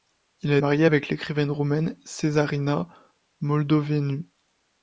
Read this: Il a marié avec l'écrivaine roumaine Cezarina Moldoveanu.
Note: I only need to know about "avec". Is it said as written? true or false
true